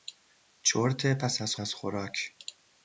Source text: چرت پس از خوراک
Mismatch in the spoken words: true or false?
true